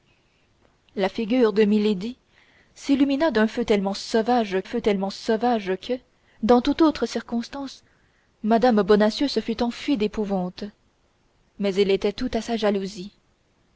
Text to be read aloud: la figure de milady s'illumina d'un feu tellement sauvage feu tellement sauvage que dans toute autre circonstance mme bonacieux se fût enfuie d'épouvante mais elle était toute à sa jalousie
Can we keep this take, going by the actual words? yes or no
yes